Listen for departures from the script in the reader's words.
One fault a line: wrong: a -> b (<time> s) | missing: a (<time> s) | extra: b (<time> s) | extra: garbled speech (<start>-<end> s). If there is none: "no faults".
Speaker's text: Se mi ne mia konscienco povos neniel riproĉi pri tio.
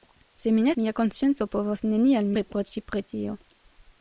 no faults